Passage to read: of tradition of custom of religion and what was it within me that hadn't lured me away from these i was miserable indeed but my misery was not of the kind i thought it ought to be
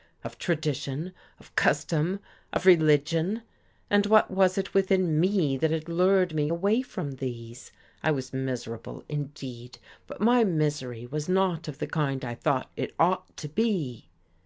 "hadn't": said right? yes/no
no